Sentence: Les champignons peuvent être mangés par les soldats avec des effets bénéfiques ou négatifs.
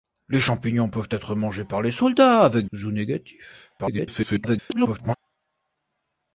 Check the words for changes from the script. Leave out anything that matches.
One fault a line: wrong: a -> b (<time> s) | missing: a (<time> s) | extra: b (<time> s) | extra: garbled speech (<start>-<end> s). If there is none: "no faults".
missing: des effets bénéfiques (2.6 s)
extra: garbled speech (3.8-5.2 s)